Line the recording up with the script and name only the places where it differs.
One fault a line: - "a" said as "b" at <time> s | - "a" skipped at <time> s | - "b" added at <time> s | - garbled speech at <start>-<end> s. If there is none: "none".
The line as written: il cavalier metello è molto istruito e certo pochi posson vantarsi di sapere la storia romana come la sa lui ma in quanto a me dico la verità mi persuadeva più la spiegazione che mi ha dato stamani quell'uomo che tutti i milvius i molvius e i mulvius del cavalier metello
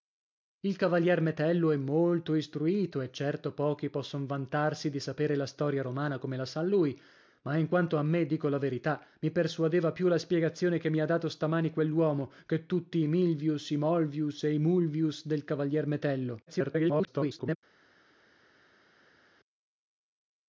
- garbled speech at 16.5-17.6 s